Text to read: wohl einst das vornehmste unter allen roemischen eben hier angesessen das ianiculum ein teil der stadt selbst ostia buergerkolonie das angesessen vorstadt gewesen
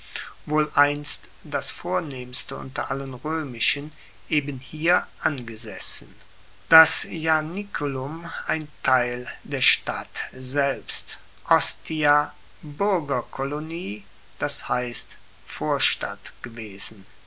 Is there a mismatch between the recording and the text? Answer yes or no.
yes